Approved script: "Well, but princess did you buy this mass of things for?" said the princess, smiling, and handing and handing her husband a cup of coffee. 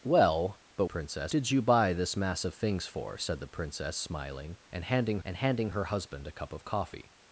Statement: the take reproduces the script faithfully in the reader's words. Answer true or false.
true